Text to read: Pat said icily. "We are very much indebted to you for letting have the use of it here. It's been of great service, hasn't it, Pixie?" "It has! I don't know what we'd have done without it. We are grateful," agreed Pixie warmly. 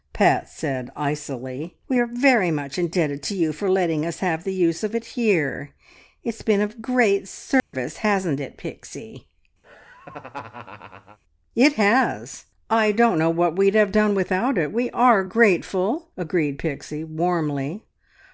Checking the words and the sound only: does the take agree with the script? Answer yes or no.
no